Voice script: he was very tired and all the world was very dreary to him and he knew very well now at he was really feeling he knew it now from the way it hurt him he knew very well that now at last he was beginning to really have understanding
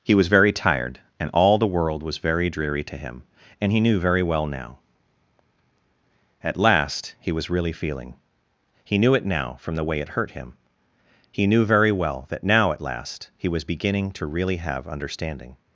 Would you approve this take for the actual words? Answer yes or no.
no